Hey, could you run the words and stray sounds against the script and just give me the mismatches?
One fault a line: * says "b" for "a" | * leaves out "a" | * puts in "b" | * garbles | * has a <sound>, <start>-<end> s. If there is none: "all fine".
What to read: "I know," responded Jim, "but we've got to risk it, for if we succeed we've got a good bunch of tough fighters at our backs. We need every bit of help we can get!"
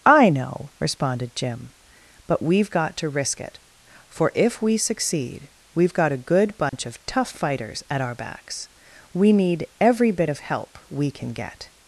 * has a dropout, 6.7-6.7 s